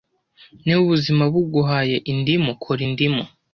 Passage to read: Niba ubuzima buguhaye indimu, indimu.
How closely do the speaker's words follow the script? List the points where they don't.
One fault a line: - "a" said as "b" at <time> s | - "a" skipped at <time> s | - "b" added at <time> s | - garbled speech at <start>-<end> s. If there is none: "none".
- "kora" added at 2.6 s